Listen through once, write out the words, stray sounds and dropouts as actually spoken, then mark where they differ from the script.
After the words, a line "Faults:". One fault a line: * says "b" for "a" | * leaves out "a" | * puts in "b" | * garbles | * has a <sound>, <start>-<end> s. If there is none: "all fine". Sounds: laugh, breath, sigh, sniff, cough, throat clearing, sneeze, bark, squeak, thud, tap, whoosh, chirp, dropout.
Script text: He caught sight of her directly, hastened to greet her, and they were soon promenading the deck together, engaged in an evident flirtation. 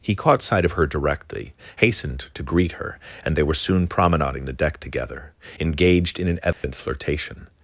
He caught sight of her directly, hastened to greet her, and they were soon promenading the deck together, engaged in an evident flirtation.
Faults:
* has a dropout, 6.5-6.6 s